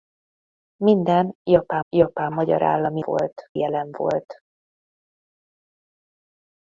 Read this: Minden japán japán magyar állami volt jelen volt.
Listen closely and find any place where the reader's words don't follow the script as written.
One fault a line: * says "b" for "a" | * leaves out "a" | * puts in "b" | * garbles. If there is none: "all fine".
all fine